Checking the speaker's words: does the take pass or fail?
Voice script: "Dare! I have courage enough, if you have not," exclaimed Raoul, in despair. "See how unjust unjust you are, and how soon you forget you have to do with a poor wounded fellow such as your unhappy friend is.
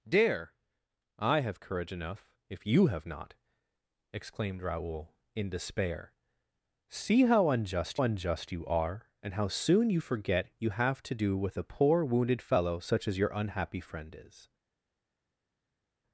pass